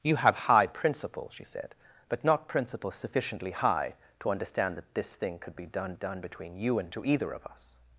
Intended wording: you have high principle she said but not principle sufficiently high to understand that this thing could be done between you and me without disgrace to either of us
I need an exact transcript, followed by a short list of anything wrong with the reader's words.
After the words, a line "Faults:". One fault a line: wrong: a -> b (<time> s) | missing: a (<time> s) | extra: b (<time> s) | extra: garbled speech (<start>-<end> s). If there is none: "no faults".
you have high principle she said but not principle sufficiently high to understand that this thing could be done done between you and to either of us
Faults:
extra: done (5.9 s)
missing: me without disgrace (6.9 s)